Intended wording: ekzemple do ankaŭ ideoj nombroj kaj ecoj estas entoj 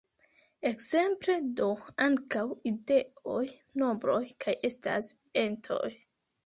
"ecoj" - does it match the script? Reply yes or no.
no